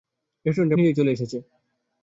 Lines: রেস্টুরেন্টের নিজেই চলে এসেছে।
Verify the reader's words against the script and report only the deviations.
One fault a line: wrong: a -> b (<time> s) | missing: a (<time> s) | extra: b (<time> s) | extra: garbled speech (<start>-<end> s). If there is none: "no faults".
no faults